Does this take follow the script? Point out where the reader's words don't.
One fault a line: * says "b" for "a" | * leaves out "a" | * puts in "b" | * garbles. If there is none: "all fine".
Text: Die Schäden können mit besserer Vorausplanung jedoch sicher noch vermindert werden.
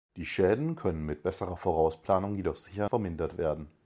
* leaves out "noch"